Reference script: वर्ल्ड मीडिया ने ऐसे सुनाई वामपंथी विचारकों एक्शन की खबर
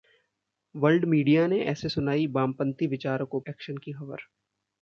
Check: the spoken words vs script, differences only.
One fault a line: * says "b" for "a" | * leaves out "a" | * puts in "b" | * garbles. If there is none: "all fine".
all fine